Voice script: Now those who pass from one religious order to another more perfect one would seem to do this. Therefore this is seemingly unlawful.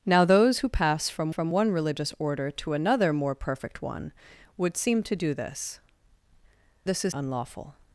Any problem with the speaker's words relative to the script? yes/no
yes